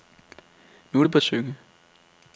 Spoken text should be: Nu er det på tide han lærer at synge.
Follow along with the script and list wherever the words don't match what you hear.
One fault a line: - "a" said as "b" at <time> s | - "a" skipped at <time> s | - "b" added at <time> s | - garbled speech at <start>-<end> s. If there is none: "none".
- "tide han lærer" skipped at 1.2 s